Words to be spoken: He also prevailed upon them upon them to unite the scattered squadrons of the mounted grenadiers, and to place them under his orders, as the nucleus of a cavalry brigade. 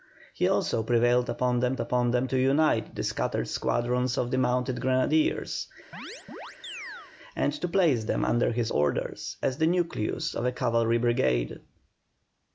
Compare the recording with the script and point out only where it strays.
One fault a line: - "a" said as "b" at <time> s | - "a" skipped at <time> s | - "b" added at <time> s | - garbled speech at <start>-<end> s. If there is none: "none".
none